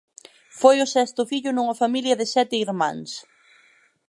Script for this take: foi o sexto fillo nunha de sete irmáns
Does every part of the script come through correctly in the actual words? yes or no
no